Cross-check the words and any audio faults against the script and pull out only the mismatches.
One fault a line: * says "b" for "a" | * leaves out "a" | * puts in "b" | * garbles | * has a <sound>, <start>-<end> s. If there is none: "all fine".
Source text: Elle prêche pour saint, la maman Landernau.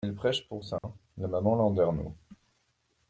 * has a dropout, 0.8-0.8 s